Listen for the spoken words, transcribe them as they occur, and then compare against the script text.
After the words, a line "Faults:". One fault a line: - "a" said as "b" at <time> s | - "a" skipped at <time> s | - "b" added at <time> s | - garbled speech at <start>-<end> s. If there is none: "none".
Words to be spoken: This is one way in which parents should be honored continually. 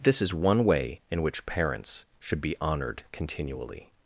This is one way in which parents should be honored continually.
Faults:
none